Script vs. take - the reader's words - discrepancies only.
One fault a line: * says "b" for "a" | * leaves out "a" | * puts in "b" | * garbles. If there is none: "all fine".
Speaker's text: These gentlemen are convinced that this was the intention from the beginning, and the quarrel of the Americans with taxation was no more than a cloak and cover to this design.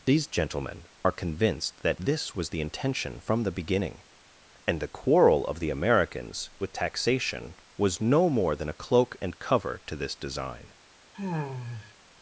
all fine